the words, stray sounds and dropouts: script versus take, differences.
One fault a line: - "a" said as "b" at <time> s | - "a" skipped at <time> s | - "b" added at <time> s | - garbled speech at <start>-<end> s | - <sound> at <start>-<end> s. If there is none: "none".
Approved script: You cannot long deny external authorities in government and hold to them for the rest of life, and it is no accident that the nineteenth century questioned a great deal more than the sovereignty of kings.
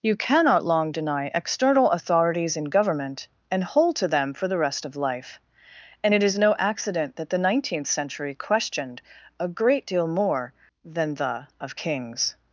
- "sovereignty" skipped at 11.5 s